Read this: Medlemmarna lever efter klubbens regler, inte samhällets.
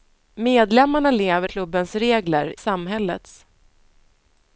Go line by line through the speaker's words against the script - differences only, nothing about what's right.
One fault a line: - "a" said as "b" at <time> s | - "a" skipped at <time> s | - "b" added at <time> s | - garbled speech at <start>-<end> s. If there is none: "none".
- "efter" skipped at 1.5 s
- "inte" skipped at 2.5 s